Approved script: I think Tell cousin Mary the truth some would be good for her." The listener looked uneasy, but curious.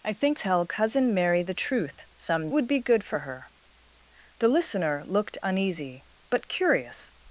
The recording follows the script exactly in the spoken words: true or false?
true